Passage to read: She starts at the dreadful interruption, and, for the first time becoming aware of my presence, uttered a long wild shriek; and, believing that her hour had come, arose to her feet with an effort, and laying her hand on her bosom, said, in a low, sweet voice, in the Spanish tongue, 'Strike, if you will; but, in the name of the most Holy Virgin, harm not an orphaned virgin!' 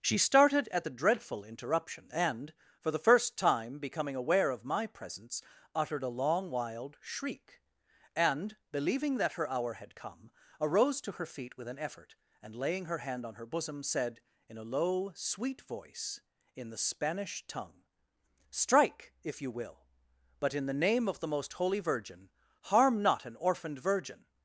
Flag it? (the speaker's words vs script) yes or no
yes